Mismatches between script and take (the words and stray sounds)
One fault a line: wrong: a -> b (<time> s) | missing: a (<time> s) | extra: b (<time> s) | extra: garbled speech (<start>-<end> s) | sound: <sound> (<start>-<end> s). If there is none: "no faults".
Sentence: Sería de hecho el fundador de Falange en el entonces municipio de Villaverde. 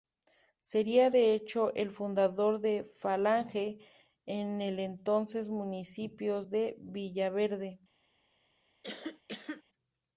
sound: cough (8.8-9.6 s)